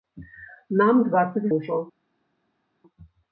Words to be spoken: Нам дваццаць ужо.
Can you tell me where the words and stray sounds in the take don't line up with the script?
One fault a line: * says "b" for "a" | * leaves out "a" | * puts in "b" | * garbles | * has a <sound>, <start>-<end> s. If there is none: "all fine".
all fine